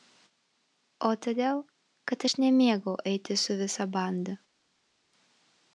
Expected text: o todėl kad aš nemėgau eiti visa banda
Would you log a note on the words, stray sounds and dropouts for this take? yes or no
yes